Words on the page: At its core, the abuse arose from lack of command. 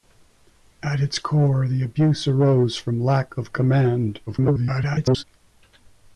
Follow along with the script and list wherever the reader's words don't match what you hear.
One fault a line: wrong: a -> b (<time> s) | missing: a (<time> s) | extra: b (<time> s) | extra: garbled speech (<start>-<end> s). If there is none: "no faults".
extra: garbled speech (4.3-5.2 s)